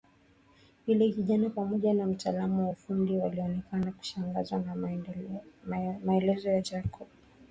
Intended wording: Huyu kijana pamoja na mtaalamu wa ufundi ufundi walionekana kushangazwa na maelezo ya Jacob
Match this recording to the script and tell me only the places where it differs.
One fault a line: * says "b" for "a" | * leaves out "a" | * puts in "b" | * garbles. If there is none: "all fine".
* says "Yule" for "Huyu"
* leaves out "ufundi"